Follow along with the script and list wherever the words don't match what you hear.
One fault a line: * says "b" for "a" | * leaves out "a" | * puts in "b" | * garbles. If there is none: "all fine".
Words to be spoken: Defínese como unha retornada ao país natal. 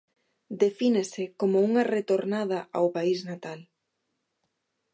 all fine